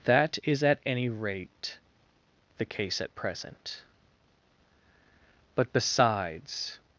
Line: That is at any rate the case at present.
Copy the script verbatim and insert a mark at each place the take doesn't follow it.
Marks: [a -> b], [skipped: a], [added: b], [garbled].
That is at any rate the case at present. [added: But besides]